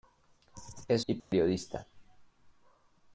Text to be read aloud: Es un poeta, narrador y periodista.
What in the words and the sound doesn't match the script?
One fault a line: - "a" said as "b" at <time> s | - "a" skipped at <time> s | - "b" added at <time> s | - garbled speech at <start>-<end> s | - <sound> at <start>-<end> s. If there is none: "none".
- "un poeta narrador" skipped at 1.1 s
- dropout at 1.2-1.3 s